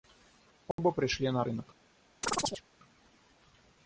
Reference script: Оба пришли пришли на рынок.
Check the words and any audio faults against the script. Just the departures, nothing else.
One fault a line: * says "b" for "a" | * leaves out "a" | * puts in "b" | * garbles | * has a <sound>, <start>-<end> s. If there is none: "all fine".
* has a dropout, 0.7-0.8 s
* leaves out "пришли"
* has a chirp, 2.2-2.6 s